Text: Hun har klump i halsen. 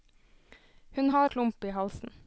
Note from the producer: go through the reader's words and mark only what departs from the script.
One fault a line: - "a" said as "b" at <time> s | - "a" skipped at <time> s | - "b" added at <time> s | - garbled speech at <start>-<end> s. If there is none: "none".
none